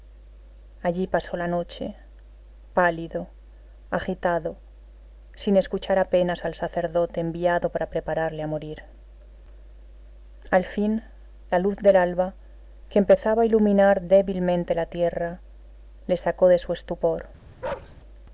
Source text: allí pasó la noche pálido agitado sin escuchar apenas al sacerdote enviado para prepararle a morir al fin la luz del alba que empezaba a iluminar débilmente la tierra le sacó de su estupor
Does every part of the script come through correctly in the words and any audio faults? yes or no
no